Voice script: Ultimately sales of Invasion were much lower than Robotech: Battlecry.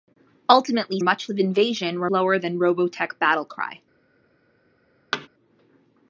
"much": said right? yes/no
no